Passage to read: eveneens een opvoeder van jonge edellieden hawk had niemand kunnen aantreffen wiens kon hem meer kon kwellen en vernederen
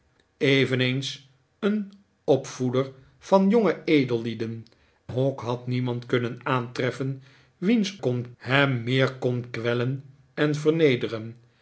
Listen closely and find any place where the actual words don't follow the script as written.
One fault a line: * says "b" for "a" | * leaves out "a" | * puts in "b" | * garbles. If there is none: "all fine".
all fine